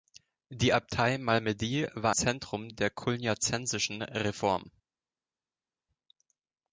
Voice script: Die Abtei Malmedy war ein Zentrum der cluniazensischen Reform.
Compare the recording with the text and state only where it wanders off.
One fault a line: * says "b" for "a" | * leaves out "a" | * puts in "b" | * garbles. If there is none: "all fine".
* leaves out "ein"